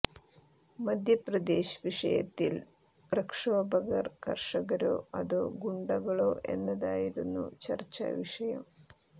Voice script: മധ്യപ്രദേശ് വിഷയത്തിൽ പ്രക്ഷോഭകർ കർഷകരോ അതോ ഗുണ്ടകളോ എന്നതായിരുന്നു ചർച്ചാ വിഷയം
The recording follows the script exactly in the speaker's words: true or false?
true